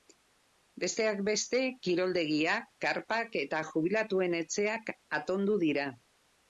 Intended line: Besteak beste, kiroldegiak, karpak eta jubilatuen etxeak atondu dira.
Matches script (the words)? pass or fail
pass